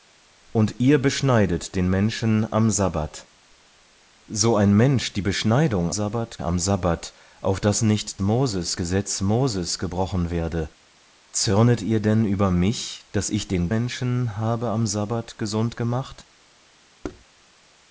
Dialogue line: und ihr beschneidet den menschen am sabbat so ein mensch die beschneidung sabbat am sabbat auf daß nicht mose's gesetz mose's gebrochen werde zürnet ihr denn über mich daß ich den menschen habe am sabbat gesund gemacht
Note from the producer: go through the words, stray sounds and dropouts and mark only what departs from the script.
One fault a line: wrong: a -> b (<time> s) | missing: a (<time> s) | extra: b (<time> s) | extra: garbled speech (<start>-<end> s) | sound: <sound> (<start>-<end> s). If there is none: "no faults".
sound: thud (17.0-17.3 s)